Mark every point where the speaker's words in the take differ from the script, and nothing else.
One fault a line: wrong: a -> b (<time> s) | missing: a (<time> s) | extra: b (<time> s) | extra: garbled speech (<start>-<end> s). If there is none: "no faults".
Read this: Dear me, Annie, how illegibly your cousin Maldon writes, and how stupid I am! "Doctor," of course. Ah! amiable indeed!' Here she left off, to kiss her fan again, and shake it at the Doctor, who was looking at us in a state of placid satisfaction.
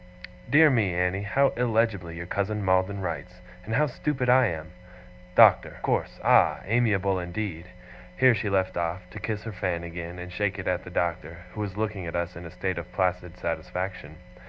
missing: of (5.8 s)